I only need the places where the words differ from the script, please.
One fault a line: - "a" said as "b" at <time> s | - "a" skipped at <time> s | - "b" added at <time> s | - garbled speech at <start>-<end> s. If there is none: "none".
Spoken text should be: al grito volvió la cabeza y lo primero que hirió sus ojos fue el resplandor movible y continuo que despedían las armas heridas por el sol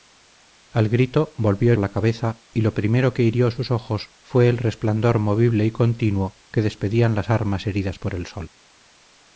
none